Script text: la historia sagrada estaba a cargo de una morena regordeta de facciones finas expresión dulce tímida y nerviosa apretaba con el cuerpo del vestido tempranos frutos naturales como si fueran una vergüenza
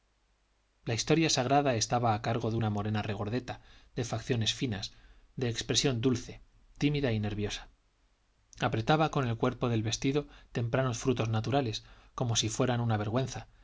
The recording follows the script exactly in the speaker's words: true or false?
false